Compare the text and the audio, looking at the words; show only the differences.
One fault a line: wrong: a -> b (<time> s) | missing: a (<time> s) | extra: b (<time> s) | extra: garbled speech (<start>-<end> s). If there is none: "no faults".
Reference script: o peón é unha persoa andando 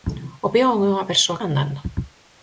no faults